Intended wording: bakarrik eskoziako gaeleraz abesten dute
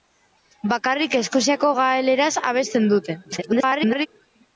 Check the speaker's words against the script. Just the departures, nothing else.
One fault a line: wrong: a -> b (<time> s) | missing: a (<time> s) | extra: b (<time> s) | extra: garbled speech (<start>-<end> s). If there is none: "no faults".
extra: garbled speech (3.2-4.1 s)